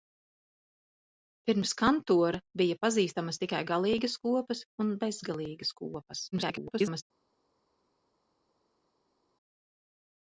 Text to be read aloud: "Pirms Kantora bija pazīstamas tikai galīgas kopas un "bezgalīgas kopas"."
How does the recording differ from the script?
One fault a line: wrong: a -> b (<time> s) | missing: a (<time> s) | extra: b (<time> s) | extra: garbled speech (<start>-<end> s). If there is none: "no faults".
extra: garbled speech (6.3-7.0 s)